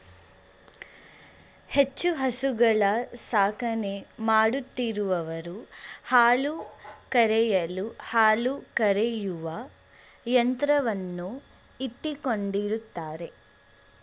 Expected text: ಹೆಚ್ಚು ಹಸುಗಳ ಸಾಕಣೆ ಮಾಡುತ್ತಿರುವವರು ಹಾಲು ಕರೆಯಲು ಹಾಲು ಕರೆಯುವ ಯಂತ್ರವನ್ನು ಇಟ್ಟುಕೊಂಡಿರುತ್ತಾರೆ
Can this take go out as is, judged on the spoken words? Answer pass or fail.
pass